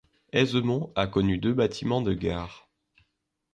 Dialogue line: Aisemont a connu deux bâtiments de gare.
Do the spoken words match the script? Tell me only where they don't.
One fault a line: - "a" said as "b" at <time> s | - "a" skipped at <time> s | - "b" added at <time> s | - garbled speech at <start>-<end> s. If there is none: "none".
none